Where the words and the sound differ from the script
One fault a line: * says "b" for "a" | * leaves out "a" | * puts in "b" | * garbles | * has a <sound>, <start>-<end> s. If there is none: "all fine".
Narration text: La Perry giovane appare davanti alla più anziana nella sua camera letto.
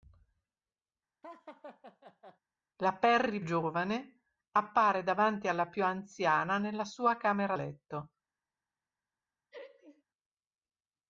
* has a laugh, 1.2-2.4 s
* has a laugh, 9.5-10.0 s